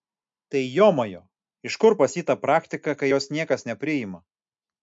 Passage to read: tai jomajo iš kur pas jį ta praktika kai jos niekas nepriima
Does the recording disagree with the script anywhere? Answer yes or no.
no